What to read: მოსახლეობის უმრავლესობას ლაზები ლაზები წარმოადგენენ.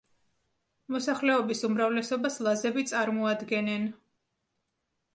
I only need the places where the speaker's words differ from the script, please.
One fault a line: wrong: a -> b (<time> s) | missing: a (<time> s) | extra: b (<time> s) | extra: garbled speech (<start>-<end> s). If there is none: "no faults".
missing: ლაზები (2.9 s)